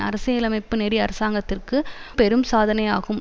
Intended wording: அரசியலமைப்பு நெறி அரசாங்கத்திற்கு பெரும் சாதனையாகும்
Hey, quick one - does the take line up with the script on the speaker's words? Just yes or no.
yes